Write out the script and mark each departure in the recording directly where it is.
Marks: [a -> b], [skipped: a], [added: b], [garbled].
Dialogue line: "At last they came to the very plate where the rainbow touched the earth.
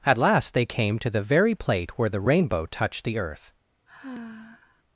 "At last they came to the very plate where the rainbow touched the earth.